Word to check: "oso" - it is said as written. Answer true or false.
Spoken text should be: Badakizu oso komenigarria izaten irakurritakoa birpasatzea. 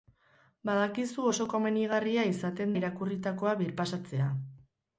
true